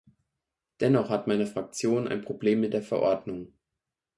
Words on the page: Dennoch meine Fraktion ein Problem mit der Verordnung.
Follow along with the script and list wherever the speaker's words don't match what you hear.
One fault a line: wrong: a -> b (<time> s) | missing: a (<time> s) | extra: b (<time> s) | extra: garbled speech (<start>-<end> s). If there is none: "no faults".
extra: hat (1.1 s)